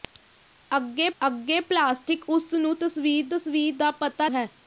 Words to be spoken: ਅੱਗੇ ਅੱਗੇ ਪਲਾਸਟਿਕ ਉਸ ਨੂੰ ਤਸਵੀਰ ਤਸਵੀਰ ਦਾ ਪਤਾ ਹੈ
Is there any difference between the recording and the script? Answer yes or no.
no